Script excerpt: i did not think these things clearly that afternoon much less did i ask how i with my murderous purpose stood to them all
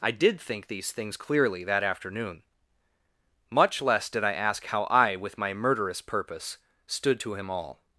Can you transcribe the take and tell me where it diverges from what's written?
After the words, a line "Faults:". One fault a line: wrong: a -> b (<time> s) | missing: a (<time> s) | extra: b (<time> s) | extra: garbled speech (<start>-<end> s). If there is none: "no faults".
i did think these things clearly that afternoon much less did i ask how i with my murderous purpose stood to him all
Faults:
missing: not (0.4 s)
wrong: them -> him (7.3 s)